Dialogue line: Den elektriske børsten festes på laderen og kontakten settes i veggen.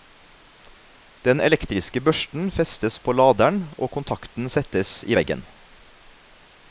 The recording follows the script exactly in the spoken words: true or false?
true